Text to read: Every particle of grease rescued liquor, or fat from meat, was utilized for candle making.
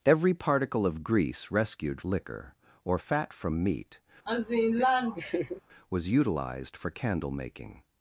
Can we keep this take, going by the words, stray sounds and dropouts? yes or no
no